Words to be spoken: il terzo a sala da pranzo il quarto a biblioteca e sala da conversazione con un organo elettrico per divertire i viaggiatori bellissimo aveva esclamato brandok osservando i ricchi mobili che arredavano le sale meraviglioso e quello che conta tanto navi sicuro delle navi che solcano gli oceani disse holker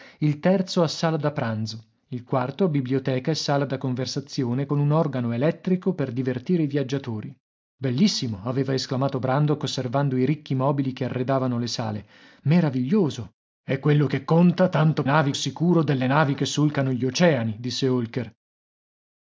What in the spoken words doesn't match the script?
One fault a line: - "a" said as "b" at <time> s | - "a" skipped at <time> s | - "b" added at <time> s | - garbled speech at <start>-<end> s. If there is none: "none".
none